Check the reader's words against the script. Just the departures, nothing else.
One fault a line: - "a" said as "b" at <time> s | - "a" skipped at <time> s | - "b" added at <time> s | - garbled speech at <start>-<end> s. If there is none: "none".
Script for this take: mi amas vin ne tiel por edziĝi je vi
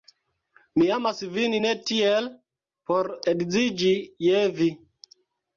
none